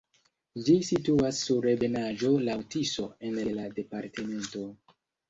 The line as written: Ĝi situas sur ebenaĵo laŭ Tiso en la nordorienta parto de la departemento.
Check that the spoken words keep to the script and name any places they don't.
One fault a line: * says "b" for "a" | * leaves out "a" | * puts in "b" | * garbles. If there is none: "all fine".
* leaves out "la nordorienta parto"